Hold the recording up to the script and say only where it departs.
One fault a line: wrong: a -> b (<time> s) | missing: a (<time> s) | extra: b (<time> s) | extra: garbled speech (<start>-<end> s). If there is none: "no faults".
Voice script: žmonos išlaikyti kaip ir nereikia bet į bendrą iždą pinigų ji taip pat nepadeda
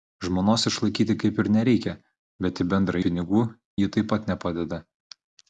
missing: iždą (3.0 s)